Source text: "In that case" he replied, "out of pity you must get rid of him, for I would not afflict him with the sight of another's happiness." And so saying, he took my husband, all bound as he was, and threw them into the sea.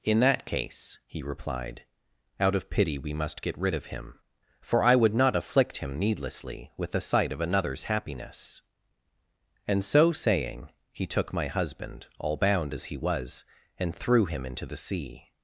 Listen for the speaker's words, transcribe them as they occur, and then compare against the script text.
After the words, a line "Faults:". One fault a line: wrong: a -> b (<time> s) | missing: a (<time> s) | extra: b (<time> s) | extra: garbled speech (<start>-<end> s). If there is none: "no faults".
"In that case" he replied, "out of pity we must get rid of him, for I would not afflict him needlessly with the sight of another's happiness." And so saying, he took my husband, all bound as he was, and threw him into the sea.
Faults:
wrong: you -> we (3.0 s)
extra: needlessly (6.0 s)
wrong: them -> him (14.3 s)